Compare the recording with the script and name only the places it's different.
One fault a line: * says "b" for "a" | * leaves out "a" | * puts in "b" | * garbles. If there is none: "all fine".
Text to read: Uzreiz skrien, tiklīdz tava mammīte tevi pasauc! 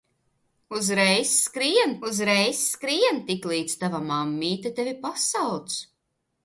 * puts in "uzreiz skrien"